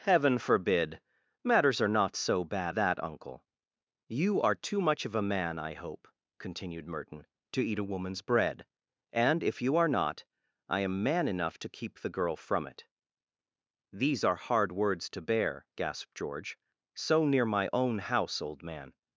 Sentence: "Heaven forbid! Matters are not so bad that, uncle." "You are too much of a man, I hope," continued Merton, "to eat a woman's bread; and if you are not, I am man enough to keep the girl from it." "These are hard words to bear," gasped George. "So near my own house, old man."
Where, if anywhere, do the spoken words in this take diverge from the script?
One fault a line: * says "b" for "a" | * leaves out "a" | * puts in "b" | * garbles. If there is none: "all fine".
all fine